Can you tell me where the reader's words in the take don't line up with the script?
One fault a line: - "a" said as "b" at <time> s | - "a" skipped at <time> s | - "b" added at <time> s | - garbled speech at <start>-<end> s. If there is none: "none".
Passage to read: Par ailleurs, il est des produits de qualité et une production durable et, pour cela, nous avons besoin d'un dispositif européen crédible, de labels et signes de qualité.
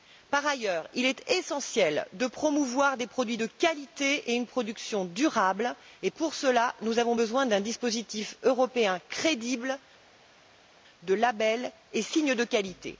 - "essentiel de promouvoir" added at 1.3 s